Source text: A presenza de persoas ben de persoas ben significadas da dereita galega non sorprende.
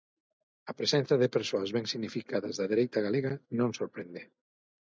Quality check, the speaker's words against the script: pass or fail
fail